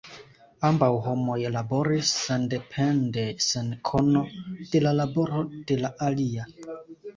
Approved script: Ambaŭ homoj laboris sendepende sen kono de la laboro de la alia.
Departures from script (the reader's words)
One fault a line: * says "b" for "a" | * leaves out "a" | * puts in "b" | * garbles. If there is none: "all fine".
all fine